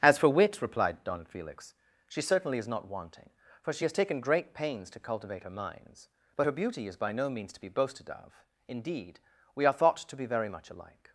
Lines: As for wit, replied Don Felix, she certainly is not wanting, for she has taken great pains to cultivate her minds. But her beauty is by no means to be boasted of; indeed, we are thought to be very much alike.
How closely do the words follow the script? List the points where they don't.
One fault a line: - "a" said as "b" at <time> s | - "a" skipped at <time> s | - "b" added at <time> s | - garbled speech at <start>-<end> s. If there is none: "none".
none